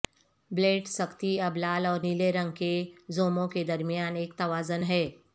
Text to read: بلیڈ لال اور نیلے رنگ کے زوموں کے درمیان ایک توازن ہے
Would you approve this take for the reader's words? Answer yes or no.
no